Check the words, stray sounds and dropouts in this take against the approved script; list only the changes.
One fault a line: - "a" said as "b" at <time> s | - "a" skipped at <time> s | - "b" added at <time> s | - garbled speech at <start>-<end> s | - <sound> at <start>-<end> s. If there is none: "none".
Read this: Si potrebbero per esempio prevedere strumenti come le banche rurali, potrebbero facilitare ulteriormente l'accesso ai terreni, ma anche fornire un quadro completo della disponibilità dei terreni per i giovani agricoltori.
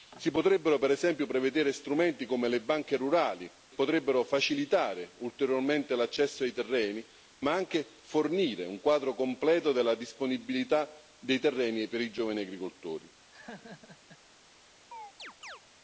- laugh at 13.3-14.2 s
- chirp at 14.9-15.6 s